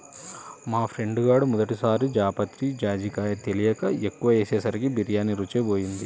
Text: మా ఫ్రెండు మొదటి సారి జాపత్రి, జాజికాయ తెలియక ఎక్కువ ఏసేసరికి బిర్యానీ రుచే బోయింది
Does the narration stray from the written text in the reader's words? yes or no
yes